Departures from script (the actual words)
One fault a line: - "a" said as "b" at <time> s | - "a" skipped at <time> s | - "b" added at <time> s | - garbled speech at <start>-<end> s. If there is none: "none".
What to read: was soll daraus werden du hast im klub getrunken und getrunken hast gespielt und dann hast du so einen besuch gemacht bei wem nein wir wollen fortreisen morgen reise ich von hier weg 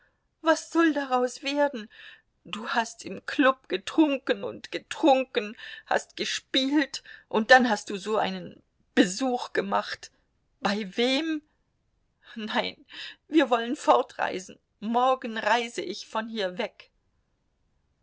none